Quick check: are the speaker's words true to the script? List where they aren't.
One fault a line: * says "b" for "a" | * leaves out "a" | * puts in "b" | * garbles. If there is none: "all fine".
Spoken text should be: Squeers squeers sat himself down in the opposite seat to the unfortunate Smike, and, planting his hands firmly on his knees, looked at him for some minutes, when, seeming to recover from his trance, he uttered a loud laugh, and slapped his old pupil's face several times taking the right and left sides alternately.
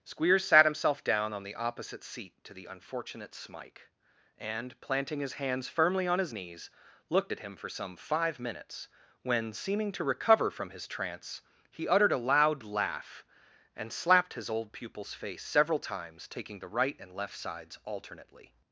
* leaves out "squeers"
* says "on" for "in"
* puts in "five"